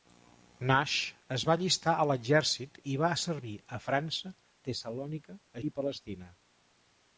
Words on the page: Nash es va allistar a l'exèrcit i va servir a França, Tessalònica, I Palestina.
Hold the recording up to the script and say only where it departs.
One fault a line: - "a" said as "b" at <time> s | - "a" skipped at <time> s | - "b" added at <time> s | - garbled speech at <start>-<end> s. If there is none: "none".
none